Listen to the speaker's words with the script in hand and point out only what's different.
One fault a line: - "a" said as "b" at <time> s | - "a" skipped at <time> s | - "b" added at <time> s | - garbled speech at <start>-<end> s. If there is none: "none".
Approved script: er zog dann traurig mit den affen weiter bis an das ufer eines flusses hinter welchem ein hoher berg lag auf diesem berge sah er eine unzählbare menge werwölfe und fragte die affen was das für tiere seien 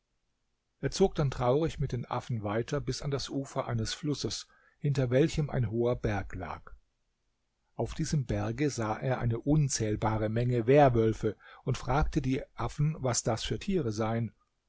none